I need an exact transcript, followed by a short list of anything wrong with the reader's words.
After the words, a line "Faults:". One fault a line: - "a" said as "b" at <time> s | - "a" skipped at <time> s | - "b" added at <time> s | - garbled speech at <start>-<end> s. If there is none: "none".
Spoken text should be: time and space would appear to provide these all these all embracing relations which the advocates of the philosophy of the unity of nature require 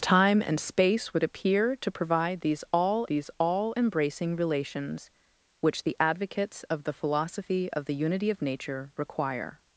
time and space would appear to provide these all these all embracing relations which the advocates of the philosophy of the unity of nature require
Faults:
none